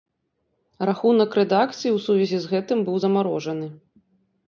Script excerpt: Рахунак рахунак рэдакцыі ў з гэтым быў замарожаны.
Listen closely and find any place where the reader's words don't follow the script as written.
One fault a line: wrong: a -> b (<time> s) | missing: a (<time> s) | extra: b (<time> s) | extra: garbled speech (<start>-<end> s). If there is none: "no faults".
missing: рахунак (1.4 s)
extra: сувязі (2.1 s)